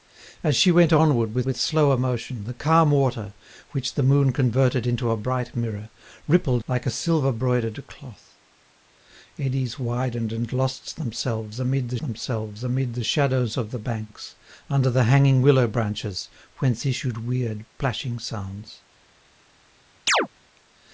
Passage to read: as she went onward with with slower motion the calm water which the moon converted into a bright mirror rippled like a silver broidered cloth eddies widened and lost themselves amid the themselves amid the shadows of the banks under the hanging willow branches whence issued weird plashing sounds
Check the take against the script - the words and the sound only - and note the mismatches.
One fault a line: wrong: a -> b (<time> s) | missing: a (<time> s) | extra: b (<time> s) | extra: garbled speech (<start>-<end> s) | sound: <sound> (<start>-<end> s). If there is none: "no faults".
sound: chirp (20.1-20.3 s)